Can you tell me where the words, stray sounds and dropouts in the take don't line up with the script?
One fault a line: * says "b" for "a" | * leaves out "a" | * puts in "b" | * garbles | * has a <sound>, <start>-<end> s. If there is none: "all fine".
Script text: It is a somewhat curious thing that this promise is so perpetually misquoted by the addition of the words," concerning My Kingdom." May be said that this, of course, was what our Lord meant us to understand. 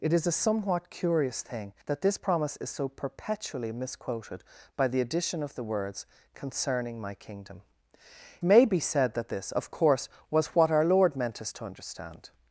all fine